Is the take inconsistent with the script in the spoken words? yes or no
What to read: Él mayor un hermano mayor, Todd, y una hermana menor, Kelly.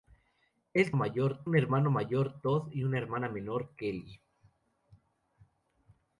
no